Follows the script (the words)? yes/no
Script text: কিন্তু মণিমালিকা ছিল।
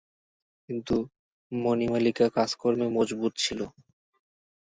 no